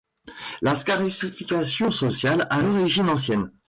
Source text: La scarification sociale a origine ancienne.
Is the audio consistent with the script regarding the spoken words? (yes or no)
yes